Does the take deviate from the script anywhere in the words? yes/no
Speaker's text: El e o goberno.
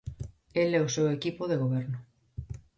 yes